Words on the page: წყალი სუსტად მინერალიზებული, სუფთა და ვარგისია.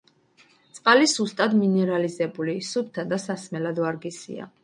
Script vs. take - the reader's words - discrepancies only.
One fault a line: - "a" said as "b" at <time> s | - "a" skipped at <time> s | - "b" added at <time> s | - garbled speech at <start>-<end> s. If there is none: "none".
- "სასმელად" added at 3.3 s